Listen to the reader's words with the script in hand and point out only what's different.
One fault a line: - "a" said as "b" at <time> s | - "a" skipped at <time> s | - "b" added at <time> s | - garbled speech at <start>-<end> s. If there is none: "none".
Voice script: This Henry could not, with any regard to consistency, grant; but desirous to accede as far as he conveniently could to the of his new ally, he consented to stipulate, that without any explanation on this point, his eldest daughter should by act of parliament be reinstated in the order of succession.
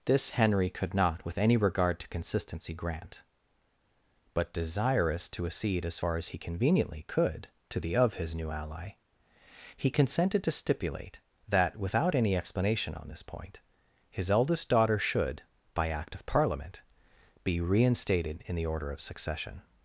none